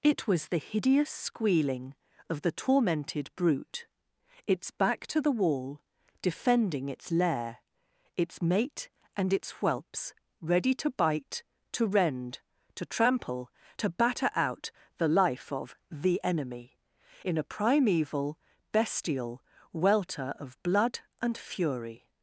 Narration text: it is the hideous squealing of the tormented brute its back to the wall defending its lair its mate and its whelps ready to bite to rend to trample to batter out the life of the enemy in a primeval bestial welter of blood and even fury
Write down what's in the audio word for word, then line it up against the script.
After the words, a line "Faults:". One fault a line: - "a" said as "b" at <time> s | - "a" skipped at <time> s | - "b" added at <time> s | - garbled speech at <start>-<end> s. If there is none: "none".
it was the hideous squealing of the tormented brute its back to the wall defending its lair its mate and its whelps ready to bite to rend to trample to batter out the life of the enemy in a primeval bestial welter of blood and fury
Faults:
- "is" said as "was" at 0.3 s
- "even" skipped at 21.4 s